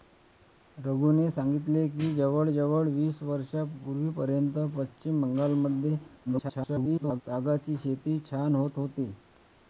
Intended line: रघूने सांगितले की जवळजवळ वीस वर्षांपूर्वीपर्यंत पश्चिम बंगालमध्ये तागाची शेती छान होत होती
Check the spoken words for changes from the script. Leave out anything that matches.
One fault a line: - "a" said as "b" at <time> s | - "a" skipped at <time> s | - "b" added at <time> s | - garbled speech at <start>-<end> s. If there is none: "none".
- garbled speech at 6.3-7.2 s